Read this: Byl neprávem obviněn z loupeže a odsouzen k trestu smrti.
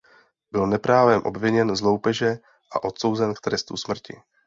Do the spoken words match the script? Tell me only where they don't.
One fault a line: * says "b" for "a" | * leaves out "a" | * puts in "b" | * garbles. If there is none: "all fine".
all fine